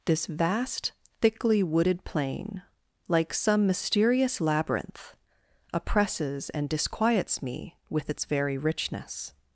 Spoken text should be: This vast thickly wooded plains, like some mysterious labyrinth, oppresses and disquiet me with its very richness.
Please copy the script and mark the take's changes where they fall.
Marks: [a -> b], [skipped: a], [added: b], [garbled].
This vast thickly wooded [plains, -> plain] like some mysterious labyrinth, oppresses and [disquiet -> disquiets] me with its very richness.